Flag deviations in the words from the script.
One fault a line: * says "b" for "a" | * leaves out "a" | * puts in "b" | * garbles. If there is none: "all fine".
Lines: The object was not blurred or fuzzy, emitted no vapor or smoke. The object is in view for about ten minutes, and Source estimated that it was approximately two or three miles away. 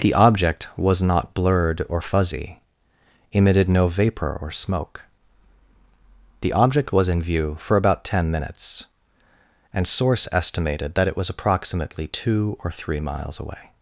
* says "was" for "is"